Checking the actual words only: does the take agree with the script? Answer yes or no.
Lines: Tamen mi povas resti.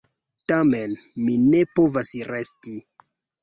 no